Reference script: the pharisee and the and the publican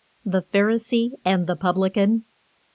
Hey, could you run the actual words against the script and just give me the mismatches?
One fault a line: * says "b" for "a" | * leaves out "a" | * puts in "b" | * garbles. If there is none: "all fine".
* leaves out "and the"